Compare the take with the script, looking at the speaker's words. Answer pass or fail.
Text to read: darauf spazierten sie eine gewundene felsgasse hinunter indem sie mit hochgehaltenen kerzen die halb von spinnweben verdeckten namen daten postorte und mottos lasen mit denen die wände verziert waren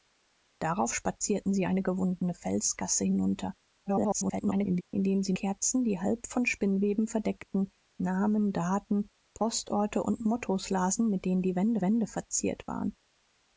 fail